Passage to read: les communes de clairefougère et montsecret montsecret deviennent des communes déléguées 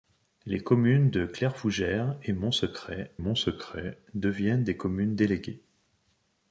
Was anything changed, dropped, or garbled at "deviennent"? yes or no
no